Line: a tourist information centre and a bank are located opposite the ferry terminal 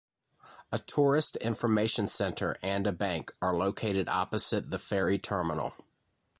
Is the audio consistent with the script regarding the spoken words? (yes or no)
yes